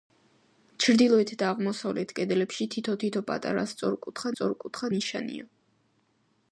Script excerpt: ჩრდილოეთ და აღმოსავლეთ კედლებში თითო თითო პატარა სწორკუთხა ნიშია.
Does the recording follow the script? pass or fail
fail